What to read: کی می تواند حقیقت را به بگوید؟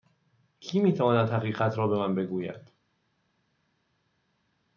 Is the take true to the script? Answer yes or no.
no